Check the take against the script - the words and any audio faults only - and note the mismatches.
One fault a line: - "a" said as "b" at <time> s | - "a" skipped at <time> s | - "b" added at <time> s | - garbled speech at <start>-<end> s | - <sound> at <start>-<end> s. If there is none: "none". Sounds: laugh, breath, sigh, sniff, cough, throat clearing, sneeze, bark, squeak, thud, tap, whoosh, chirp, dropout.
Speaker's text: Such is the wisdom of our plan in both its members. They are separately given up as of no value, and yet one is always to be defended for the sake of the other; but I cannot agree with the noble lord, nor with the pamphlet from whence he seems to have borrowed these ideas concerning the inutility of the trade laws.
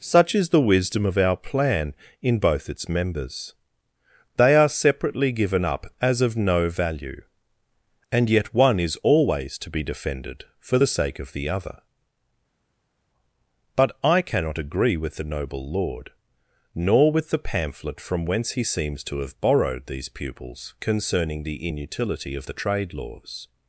- "ideas" said as "pupils" at 20.1 s